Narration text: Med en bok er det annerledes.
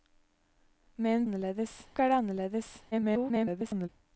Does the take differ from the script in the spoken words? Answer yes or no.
yes